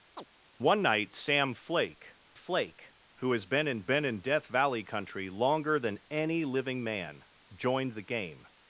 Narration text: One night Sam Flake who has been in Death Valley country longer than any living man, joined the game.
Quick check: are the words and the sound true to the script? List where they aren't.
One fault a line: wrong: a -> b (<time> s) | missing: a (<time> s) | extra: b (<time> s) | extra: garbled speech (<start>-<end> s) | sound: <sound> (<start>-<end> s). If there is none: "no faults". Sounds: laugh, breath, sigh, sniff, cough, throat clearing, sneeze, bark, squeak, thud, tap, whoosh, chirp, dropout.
sound: chirp (0.2-0.3 s)
extra: Flake (2.3 s)
extra: been in (3.8 s)